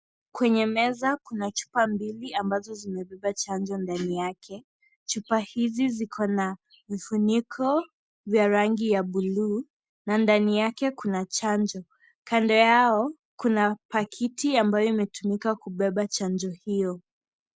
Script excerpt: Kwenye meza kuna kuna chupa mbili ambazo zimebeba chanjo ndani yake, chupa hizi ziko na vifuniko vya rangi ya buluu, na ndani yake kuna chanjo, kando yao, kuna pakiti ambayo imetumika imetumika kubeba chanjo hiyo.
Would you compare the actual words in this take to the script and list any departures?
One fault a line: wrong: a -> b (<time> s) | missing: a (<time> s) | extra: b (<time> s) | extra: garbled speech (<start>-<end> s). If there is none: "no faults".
missing: kuna (1.5 s)
missing: imetumika (15.6 s)